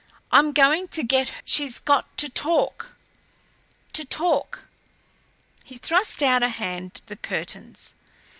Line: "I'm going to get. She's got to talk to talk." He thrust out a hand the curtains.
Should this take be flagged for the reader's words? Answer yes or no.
no